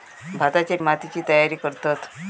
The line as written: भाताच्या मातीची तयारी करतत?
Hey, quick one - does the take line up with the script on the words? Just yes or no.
yes